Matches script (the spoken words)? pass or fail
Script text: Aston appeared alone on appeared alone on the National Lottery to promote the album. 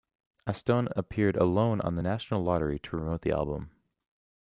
fail